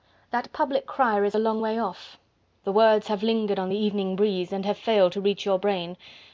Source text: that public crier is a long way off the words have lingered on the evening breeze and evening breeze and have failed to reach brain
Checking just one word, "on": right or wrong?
right